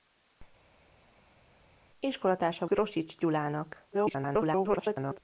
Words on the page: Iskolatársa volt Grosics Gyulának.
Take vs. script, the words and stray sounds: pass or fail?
fail